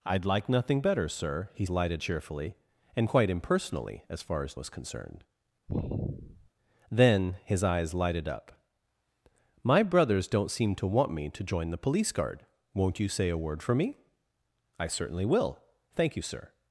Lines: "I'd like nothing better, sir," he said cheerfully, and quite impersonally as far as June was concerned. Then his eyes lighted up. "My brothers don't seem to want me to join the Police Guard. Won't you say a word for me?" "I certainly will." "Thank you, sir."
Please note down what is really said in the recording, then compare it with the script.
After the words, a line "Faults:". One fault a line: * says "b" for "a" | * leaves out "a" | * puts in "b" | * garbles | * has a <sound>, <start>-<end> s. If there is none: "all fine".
"I'd like nothing better, sir," he lighted cheerfully, and quite impersonally as far as Was concerned. Then his eyes lighted up. "My brothers don't seem to want me to join the Police Guard. Won't you say a word for me?" "I certainly will." "Thank you, sir."
Faults:
* says "lighted" for "said"
* leaves out "June"
* has a sigh, 5.7-6.5 s